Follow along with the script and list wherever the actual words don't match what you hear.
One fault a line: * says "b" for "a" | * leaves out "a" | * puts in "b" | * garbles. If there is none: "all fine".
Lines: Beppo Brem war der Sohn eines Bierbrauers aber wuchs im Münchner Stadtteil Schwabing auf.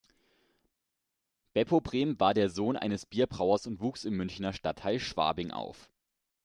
* says "und" for "aber"